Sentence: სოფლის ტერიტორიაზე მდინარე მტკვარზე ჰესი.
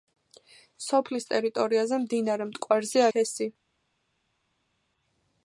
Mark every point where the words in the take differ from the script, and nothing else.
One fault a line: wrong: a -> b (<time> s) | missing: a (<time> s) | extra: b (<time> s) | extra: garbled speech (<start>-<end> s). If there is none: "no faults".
no faults